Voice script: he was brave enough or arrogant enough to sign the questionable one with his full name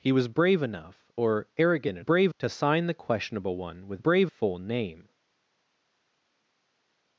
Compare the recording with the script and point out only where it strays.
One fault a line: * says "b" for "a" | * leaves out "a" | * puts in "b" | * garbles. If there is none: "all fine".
* says "brave" for "enough"
* says "brave" for "his"